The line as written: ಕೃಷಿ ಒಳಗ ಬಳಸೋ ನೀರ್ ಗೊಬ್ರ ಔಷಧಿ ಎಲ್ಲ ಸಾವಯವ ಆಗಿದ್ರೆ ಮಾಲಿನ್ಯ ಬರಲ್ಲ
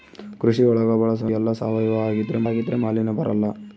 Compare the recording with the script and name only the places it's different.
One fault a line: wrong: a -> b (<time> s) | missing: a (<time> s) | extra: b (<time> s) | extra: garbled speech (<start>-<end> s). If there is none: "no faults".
missing: ನೀರ್ ಗೊಬ್ರ ಔಷಧಿ (1.3 s)
extra: ಆಗಿದ್ರೆ (2.5 s)